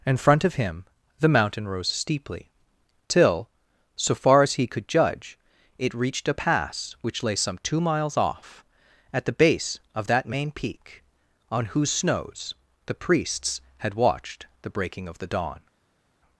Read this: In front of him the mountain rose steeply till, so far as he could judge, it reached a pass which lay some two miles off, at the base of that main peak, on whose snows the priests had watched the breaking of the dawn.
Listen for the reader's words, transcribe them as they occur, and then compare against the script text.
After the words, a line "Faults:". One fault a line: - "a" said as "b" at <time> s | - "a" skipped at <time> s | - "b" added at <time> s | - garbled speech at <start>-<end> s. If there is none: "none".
In front of him the mountain rose steeply till, so far as he could judge, it reached a pass which lay some two miles off, at the base of that main peak, on whose snows the priests had watched the breaking of the dawn.
Faults:
none